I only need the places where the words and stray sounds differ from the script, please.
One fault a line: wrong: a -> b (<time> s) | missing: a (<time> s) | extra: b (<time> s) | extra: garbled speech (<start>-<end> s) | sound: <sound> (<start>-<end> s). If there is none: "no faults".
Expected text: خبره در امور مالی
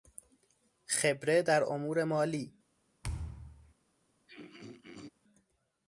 sound: thud (3.0-3.7 s)
sound: throat clearing (4.3-5.1 s)